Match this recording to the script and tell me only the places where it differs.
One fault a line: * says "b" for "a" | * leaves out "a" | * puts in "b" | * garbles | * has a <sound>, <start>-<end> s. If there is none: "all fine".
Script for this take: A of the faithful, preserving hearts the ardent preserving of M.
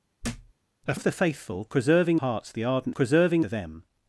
* has a thud, 0.2-0.5 s